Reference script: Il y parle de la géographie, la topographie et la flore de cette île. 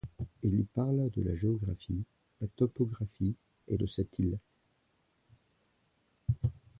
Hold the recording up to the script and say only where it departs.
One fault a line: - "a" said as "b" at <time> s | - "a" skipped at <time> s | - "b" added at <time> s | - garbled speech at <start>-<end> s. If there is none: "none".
- "la flore" skipped at 3.8 s